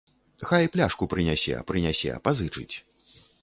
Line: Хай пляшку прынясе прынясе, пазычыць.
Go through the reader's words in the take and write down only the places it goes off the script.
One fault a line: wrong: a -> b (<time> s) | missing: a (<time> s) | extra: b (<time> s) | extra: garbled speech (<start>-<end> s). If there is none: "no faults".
no faults